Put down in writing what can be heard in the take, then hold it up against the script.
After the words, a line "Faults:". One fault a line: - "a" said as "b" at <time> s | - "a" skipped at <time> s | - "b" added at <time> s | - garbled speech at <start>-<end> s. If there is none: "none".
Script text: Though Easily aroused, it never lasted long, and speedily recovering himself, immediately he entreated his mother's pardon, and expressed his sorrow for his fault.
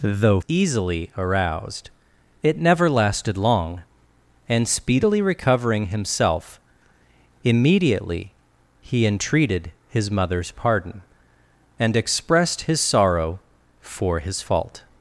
Though Easily aroused, it never lasted long, and speedily recovering himself, immediately he entreated his mother's pardon, and expressed his sorrow for his fault.
Faults:
none